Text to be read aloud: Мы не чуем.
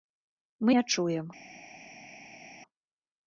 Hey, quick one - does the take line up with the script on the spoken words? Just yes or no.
yes